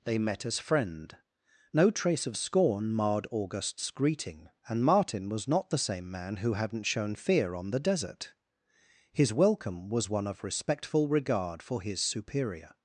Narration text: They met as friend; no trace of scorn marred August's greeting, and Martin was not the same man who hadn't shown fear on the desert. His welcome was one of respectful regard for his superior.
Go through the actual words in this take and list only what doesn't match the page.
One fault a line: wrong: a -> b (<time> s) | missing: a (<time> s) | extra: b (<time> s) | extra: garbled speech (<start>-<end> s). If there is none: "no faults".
no faults